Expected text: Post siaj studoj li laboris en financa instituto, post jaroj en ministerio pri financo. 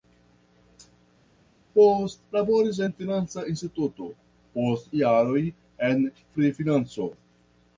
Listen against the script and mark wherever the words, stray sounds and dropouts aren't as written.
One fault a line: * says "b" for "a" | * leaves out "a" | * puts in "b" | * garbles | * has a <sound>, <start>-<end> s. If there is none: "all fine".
* leaves out "siaj studoj li"
* leaves out "ministerio"